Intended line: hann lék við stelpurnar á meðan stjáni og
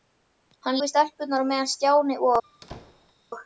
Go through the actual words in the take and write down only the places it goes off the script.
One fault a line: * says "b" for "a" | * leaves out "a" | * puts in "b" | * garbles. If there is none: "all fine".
* leaves out "lék"